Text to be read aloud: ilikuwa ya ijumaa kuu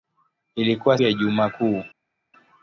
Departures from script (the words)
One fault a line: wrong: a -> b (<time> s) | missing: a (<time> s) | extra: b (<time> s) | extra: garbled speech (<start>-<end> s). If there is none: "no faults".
no faults